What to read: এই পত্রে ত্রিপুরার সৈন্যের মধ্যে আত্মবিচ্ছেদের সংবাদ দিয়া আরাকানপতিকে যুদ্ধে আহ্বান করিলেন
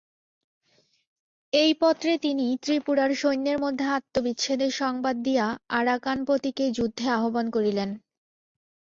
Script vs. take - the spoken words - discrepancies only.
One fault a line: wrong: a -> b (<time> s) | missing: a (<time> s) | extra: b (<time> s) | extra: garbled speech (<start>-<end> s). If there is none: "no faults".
extra: তিনি (2.2 s)